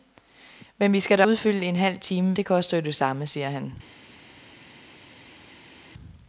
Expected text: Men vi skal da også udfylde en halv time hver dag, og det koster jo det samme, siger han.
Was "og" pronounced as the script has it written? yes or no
no